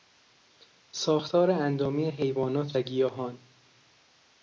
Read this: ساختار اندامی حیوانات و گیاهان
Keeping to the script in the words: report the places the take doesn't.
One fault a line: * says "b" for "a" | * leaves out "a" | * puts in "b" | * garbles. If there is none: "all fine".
all fine